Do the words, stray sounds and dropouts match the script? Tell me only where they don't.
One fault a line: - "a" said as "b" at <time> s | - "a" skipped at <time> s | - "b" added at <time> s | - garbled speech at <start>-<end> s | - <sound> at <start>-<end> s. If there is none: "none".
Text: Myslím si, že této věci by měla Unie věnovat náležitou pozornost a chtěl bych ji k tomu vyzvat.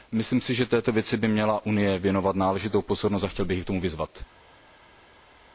none